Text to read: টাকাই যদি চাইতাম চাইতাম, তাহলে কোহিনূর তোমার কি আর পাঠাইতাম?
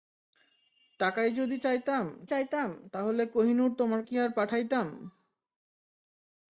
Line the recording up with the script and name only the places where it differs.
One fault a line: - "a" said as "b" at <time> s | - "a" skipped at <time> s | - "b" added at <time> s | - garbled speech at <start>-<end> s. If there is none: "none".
none